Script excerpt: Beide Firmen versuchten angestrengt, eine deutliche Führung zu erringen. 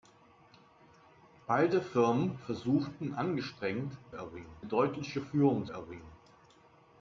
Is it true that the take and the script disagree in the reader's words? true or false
true